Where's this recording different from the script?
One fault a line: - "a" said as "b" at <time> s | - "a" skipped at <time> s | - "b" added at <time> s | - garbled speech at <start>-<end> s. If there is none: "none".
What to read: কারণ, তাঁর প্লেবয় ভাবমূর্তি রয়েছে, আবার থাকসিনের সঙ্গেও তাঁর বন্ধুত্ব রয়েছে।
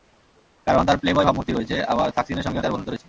none